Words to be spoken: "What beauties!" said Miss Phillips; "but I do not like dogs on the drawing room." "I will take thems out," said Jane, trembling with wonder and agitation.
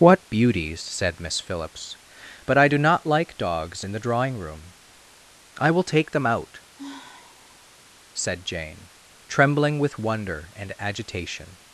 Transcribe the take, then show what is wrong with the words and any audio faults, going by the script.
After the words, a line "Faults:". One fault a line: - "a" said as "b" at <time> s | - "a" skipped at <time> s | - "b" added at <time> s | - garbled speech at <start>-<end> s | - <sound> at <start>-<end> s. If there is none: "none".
"What beauties!" said Miss Phillips; "but I do not like dogs in the drawing room." "I will take them out," said Jane, trembling with wonder and agitation.
Faults:
- "on" said as "in" at 3.8 s
- "thems" said as "them" at 6.1 s
- sigh at 6.8-7.9 s